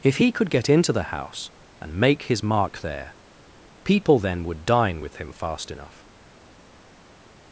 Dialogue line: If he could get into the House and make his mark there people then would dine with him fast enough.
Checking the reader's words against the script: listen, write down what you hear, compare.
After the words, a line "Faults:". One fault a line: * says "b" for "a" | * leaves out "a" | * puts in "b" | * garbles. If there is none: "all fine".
If he could get into the House and make his mark there people then would dine with him fast enough.
Faults:
all fine